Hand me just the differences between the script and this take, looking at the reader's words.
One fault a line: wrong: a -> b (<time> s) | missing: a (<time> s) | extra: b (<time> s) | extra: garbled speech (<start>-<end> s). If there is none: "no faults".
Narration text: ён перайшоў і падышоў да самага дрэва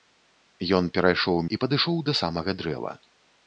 no faults